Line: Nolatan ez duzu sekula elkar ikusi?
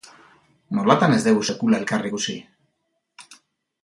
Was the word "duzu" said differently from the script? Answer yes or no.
yes